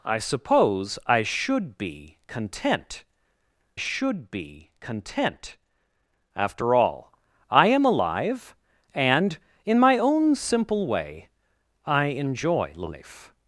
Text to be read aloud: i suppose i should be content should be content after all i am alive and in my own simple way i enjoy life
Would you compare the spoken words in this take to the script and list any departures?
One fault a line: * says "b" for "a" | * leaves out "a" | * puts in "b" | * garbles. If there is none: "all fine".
all fine